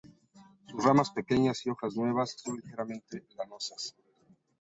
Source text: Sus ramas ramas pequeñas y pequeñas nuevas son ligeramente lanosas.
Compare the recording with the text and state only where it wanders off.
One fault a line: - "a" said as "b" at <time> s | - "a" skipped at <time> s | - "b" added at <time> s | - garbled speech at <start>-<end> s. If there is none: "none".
- "ramas" skipped at 1.1 s
- "pequeñas" said as "hojas" at 1.7 s